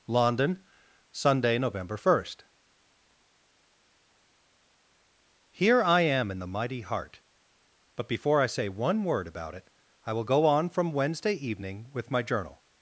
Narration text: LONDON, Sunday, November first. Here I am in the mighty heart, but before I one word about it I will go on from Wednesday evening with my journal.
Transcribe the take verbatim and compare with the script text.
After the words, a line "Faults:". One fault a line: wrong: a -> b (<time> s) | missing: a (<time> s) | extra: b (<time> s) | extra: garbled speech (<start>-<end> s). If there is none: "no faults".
LONDON, Sunday, November first. Here I am in the mighty heart, but before I say one word about it I will go on from Wednesday evening with my journal.
Faults:
extra: say (8.5 s)